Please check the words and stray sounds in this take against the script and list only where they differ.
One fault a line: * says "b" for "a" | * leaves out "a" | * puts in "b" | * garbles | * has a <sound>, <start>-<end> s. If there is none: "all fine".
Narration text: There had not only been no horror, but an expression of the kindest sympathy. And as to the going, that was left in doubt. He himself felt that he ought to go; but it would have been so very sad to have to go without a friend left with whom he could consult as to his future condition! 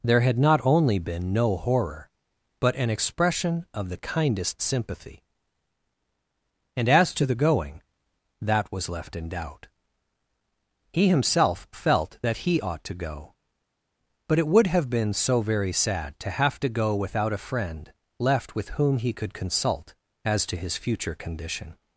all fine